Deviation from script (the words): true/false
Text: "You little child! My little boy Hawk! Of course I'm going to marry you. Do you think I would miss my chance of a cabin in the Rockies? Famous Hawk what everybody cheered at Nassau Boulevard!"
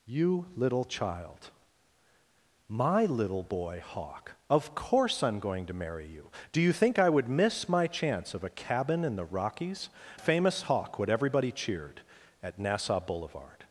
false